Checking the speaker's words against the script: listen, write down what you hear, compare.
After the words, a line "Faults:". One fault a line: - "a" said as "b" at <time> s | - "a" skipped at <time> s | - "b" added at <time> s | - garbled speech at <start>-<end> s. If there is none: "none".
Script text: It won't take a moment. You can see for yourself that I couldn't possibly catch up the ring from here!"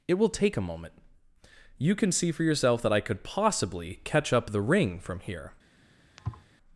It will take a moment. You can see for yourself that I could possibly catch up the ring from here!"
Faults:
- "won't" said as "will" at 0.1 s
- "couldn't" said as "could" at 3.0 s